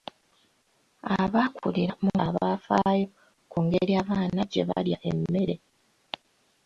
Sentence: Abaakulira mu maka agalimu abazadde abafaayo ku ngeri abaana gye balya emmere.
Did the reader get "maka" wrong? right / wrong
wrong